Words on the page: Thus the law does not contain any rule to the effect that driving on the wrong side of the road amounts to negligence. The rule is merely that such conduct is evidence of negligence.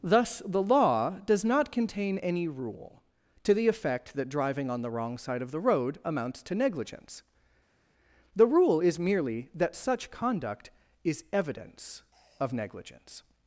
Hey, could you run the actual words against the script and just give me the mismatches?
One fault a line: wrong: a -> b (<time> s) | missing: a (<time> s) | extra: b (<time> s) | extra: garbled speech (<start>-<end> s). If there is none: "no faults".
no faults